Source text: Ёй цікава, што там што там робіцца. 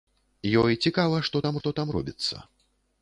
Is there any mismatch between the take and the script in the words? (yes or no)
no